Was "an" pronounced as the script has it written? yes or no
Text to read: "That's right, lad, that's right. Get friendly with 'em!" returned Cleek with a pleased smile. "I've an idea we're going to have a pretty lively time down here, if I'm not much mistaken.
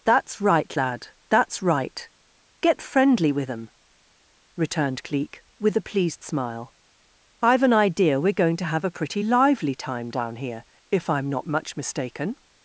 yes